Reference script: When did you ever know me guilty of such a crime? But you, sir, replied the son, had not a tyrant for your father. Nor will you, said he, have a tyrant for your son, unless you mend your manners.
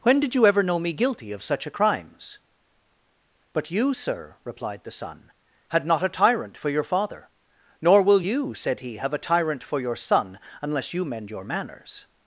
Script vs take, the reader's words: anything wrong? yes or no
yes